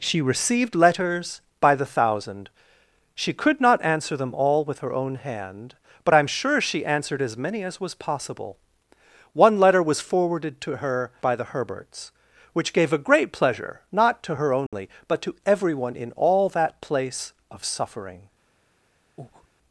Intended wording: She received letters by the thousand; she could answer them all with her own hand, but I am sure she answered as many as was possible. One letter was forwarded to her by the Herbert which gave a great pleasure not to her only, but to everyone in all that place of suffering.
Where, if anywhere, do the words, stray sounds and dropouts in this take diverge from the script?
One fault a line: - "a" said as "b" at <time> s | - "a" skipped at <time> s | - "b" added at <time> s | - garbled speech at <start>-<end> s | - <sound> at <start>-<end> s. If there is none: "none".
- "not" added at 3.6 s
- "Herbert" said as "Herberts" at 11.5 s
- dropout at 14.7-14.7 s
- breath at 19.2-19.5 s